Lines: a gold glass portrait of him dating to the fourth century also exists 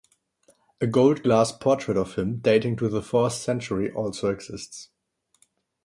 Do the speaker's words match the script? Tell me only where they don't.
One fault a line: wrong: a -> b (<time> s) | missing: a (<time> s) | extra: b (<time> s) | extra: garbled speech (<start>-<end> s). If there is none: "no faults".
no faults